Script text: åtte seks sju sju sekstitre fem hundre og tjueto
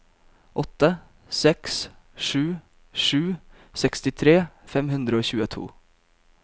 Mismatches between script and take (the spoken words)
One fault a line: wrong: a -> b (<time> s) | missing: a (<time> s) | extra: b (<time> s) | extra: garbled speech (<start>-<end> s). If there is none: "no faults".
no faults